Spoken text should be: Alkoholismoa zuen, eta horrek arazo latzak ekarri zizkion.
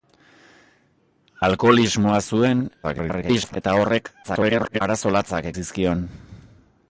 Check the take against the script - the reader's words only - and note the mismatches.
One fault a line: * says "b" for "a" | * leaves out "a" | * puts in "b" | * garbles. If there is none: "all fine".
* garbles
* garbles
* leaves out "ekarri"